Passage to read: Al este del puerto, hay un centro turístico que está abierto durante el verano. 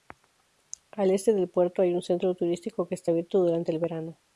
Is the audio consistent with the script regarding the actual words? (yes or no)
yes